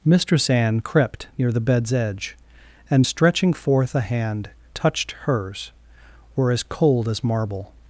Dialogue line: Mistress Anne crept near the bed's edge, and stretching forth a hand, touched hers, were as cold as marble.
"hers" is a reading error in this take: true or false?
false